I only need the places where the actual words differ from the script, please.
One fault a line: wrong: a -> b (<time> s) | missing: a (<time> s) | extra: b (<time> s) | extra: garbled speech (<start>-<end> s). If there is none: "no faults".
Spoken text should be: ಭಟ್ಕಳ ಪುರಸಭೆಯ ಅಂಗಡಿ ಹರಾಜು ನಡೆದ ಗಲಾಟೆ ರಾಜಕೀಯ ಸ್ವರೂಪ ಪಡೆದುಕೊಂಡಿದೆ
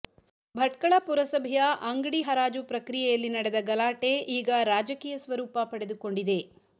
extra: ಪ್ರಕ್ರಿಯೆಯಲ್ಲಿ (2.6 s)
extra: ಈಗ (4.4 s)